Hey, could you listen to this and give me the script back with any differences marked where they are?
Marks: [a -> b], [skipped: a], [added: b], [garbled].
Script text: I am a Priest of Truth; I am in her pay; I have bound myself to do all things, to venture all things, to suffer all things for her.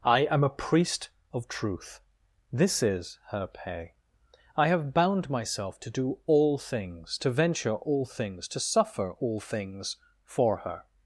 I am a Priest of Truth; [I am in -> this is] her pay; I have bound myself to do all things, to venture all things, to suffer all things for her.